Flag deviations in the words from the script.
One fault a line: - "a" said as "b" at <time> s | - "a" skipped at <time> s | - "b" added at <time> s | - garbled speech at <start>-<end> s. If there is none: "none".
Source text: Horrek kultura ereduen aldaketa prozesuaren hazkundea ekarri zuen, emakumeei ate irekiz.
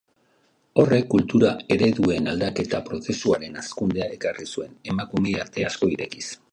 - "asko" added at 5.7 s